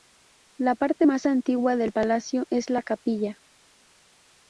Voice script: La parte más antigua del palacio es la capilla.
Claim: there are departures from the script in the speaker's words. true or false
false